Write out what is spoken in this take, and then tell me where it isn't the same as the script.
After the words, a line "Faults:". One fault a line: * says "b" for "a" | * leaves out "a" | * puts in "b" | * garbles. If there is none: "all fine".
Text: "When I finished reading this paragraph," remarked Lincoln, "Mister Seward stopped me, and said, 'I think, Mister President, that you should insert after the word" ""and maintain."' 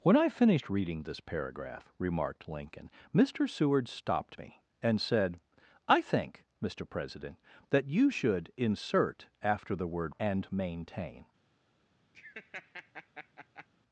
"When I finished reading this paragraph," remarked Lincoln, "Mister Seward stopped me, and said, 'I think, Mister President, that you should insert after the word" ""and maintain."'
Faults:
all fine